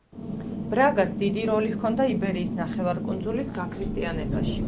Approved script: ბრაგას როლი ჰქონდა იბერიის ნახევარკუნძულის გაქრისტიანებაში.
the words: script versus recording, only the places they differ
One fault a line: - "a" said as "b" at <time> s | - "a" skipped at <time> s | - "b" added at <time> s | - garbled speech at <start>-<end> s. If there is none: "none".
- "დიდი" added at 1.2 s